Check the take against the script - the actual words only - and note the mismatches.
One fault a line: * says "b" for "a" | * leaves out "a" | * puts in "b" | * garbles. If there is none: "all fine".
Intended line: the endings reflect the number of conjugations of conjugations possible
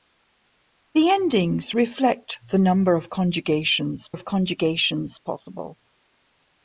all fine